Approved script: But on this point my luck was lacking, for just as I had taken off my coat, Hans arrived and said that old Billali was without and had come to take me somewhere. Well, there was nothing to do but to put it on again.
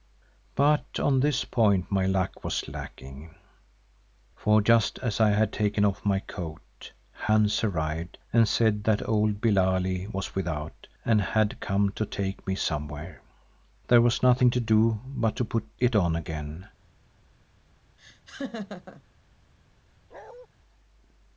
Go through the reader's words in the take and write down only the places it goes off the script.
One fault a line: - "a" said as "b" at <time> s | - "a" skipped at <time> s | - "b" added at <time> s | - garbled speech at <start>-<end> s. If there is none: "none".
- "Well" skipped at 13.2 s